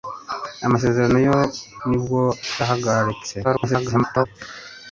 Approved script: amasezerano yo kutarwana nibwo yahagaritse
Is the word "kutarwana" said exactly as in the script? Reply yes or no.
no